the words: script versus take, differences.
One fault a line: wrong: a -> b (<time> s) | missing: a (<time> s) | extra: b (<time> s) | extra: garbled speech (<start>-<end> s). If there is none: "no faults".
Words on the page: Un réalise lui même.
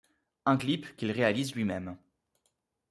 extra: clip qu'il (0.6 s)